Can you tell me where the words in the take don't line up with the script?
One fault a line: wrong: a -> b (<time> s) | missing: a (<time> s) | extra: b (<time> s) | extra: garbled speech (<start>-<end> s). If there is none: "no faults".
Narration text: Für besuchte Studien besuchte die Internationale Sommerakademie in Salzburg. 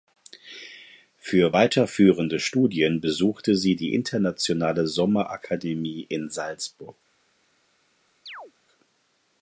wrong: besuchte -> weiterführende (1.5 s)
extra: sie (3.6 s)